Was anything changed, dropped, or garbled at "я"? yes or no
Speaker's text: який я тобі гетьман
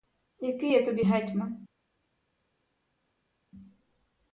no